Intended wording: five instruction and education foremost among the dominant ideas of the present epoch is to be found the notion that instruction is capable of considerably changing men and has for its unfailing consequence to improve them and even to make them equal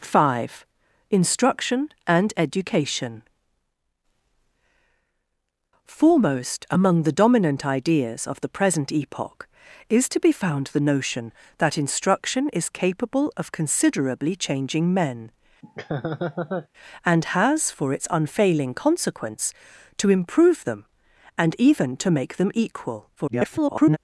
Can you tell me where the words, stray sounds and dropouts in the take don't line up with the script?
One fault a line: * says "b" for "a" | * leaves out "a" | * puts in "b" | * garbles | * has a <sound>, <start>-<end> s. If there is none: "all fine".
* has a laugh, 15.6-16.7 s
* garbles